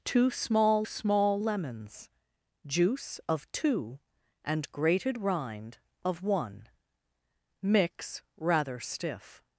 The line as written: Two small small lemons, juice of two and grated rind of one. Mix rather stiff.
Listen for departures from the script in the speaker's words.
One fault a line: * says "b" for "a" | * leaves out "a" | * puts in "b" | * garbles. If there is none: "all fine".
all fine